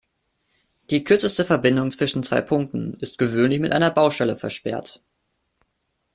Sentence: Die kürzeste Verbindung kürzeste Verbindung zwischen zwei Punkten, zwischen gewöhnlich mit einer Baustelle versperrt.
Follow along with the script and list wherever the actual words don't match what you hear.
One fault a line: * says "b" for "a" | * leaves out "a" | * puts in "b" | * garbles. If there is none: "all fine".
* leaves out "kürzeste Verbindung"
* says "ist" for "zwischen"